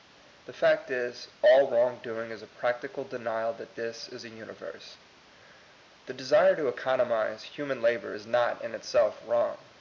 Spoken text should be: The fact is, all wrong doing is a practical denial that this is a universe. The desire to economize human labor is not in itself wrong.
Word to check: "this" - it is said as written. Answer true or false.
true